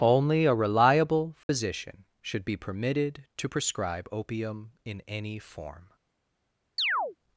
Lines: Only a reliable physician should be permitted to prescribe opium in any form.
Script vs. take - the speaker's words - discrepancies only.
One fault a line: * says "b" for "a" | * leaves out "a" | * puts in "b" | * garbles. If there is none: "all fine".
all fine